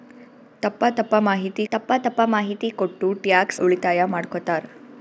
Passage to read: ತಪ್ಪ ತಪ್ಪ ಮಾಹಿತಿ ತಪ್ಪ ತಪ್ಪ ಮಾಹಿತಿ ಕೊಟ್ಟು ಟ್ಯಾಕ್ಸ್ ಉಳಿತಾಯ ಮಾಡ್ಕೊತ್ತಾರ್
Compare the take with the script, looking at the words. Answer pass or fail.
pass